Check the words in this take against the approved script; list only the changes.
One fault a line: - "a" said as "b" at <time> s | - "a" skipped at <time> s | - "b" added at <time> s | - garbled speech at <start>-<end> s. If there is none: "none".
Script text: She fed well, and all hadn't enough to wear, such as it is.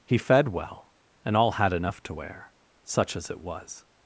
- "She" said as "He" at 0.1 s
- "hadn't" said as "had" at 1.5 s
- "is" said as "was" at 3.4 s